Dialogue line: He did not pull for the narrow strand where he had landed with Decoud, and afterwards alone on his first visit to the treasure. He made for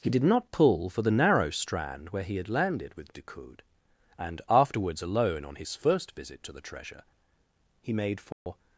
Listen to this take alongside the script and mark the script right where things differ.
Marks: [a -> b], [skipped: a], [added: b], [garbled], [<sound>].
He did not pull for the narrow strand where he had landed with Decoud, and afterwards alone on his first visit to the treasure. He made for [dropout]